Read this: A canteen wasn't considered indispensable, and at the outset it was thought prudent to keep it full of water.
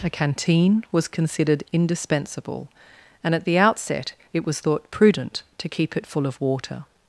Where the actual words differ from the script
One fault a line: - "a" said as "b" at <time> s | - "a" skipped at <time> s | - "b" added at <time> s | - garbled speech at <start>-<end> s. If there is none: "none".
- "wasn't" said as "was" at 0.9 s